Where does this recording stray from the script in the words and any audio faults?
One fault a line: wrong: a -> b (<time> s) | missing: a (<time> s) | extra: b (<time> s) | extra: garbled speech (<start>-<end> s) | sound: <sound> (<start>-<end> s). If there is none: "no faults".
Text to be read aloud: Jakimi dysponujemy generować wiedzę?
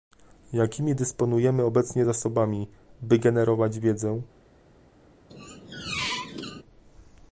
extra: obecnie zasobami by (1.6 s)
sound: squeak (5.3-6.6 s)